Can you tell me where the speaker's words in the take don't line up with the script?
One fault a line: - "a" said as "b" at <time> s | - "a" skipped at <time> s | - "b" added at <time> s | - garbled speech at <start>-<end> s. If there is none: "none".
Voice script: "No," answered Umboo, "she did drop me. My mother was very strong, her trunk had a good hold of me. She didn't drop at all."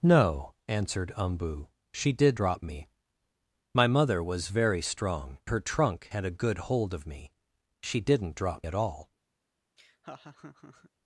none